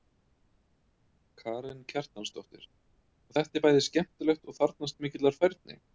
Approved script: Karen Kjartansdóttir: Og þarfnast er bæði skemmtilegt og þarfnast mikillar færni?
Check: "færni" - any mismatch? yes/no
no